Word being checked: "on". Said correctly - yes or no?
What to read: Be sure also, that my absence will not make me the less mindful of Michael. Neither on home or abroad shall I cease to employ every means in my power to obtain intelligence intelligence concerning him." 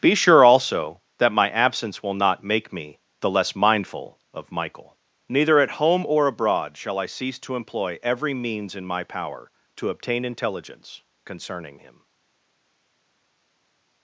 no